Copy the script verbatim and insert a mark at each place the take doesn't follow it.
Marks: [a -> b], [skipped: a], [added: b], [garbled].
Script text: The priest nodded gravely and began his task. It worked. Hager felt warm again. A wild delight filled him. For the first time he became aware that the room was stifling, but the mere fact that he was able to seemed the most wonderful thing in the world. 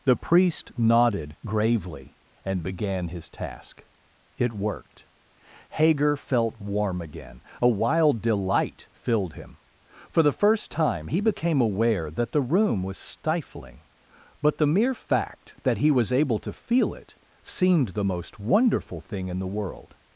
The priest nodded gravely and began his task. It worked. Hager felt warm again. A wild delight filled him. For the first time he became aware that the room was stifling, but the mere fact that he was able to [added: feel it] seemed the most wonderful thing in the world.